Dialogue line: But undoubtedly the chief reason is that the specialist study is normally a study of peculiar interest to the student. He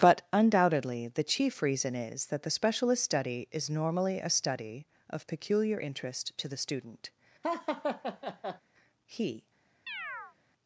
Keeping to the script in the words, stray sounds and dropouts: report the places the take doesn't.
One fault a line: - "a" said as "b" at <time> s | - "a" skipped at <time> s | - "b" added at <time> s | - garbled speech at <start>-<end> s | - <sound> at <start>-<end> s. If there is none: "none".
- laugh at 7.4-8.6 s
- chirp at 9.9-10.4 s